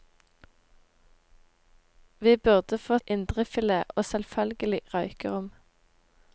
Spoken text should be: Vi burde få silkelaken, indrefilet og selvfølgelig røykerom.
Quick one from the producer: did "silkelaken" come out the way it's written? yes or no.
no